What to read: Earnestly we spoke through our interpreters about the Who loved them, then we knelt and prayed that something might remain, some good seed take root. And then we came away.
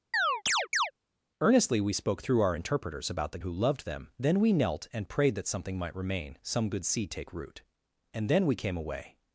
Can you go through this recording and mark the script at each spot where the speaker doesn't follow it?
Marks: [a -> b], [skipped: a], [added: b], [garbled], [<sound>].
[chirp] Earnestly we spoke through our interpreters about the Who loved them, then we knelt and prayed that something might remain, some good seed take root. And then we came away.